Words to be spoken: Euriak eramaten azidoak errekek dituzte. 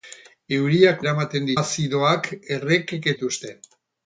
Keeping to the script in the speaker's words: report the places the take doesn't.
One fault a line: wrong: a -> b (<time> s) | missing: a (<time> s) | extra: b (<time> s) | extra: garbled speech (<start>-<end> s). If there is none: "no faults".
no faults